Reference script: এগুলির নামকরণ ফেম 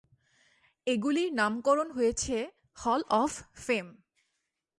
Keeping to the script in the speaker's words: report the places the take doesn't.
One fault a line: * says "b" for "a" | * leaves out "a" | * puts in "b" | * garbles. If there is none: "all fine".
* puts in "হয়েছে হল অফ"